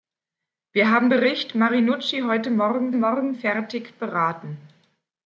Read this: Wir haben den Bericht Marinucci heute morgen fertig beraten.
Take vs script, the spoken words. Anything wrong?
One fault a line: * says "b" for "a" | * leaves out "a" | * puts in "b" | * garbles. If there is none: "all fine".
* leaves out "den"
* puts in "morgen"